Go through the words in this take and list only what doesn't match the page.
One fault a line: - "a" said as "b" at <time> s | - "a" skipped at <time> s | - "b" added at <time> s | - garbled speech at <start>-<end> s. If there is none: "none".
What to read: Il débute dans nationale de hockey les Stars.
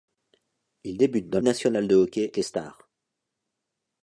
none